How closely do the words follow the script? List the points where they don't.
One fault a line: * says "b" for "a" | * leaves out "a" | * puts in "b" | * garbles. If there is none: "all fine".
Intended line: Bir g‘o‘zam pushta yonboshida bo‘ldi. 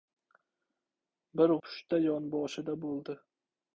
* leaves out "g‘o‘zam"